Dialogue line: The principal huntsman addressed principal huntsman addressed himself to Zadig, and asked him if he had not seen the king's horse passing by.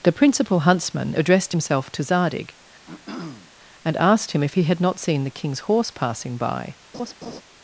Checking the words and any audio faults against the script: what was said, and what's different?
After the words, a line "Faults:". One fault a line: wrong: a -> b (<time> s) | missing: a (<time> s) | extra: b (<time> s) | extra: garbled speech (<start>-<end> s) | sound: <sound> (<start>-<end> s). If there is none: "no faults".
The principal huntsman addressed himself to Zadig, and asked him if he had not seen the king's horse passing by.
Faults:
missing: principal huntsman addressed (1.5 s)
sound: throat clearing (2.9-3.5 s)
sound: laugh (6.9-7.4 s)